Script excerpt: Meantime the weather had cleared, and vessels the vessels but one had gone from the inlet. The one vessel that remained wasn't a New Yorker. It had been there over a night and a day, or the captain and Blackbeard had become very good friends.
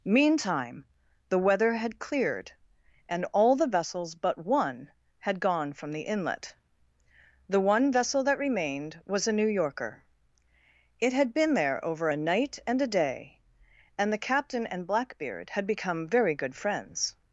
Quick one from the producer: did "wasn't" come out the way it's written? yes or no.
no